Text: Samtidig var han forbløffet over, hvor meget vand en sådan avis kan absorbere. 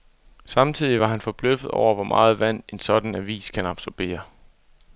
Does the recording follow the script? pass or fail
pass